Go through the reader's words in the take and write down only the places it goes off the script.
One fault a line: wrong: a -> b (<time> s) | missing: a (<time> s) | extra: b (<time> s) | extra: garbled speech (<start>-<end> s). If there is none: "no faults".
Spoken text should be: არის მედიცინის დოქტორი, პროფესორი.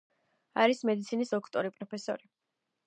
no faults